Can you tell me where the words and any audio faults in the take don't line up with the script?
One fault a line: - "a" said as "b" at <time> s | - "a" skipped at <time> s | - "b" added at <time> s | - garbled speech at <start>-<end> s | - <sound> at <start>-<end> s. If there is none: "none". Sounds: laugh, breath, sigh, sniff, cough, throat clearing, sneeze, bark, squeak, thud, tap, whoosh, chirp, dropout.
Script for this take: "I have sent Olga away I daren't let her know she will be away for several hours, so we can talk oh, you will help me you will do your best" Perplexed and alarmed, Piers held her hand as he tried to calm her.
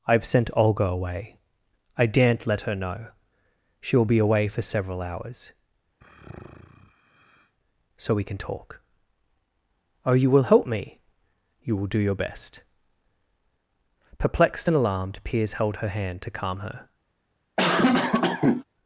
- sigh at 6.0-7.6 s
- "as he tried" skipped at 16.2 s
- cough at 17.6-18.6 s